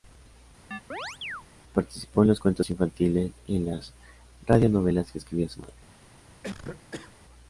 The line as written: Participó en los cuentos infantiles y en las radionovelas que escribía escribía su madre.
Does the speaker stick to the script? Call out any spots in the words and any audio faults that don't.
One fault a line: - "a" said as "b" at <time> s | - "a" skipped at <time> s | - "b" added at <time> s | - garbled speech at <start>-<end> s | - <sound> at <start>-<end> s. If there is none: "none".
- chirp at 0.7-1.4 s
- "escribía" skipped at 5.5 s
- cough at 6.4-7.2 s